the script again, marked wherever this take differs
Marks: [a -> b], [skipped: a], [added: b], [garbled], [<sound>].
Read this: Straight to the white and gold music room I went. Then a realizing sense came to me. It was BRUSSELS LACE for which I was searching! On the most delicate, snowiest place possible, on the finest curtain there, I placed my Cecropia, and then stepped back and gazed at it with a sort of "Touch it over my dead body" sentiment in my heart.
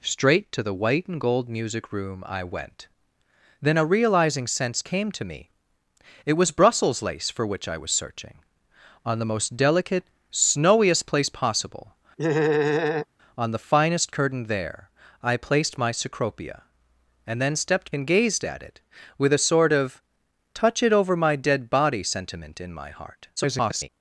Straight to the white and gold music room I went. Then a realizing sense came to me. It was BRUSSELS LACE for which I was searching! On the most delicate, snowiest place possible, [laugh] on the finest curtain there, I placed my Cecropia, and then stepped [skipped: back] and gazed at it with a sort of "Touch it over my dead body" sentiment in my heart. [garbled]